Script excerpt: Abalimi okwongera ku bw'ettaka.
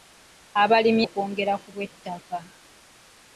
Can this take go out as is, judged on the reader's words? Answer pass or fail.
pass